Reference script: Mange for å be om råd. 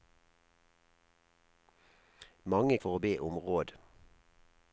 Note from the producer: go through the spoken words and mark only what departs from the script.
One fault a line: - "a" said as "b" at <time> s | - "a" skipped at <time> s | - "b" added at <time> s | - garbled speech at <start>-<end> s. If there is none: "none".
none